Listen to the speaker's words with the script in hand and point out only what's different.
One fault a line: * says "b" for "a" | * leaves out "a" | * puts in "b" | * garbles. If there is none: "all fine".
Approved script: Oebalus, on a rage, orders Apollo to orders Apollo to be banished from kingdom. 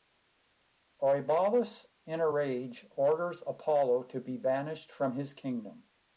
* says "in" for "on"
* leaves out "orders Apollo to"
* puts in "his"